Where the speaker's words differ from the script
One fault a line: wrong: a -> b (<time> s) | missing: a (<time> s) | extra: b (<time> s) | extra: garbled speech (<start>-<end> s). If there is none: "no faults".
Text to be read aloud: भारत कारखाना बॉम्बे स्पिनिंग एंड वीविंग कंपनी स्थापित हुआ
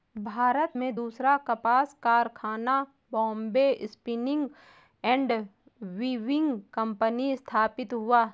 extra: में दूसरा कपास (0.7 s)